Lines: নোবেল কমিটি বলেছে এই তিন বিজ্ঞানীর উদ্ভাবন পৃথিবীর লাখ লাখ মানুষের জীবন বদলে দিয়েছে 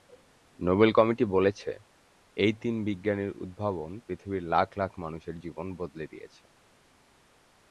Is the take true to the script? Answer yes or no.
yes